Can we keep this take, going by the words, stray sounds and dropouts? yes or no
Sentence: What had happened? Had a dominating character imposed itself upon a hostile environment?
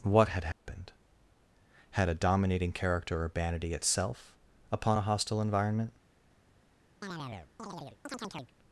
no